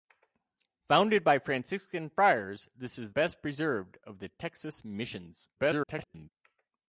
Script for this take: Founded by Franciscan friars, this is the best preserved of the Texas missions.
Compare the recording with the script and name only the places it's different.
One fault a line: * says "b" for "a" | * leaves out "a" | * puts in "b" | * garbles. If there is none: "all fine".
* leaves out "the"
* garbles